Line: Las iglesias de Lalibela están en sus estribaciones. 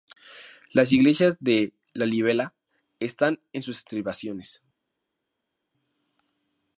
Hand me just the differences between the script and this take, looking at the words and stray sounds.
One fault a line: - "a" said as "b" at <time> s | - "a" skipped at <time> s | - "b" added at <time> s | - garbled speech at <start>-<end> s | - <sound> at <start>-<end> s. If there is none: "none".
none